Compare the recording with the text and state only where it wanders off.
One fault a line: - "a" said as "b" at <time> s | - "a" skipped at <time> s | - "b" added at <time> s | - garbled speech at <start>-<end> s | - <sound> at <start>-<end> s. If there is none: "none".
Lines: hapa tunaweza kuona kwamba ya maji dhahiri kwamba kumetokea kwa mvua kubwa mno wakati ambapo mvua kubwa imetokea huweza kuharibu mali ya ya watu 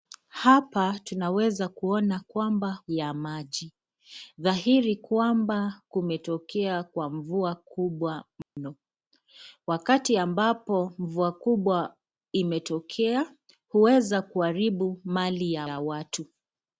- dropout at 8.4-8.6 s